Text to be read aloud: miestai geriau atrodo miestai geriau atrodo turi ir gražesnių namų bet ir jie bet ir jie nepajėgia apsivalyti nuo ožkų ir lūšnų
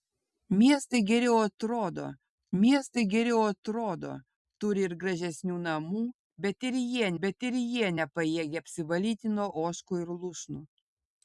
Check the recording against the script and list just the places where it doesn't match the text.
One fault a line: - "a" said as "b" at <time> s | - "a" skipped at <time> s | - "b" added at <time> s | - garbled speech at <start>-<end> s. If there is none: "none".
none